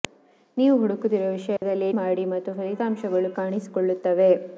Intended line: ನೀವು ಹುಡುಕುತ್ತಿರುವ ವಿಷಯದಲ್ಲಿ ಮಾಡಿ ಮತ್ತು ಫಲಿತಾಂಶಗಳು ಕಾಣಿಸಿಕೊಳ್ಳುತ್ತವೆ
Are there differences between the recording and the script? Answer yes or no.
no